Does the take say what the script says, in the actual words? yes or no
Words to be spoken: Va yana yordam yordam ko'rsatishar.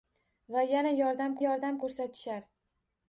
yes